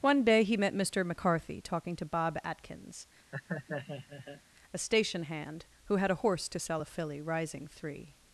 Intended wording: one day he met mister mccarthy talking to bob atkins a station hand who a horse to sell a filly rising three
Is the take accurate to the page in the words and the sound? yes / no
no